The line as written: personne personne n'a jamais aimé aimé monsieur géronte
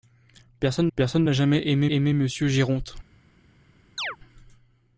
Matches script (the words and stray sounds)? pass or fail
fail